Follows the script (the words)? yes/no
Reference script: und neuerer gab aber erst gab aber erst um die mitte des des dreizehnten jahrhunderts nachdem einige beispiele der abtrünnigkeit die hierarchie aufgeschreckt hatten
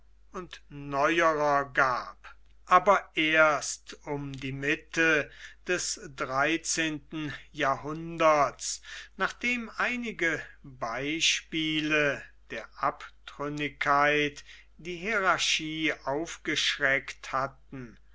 no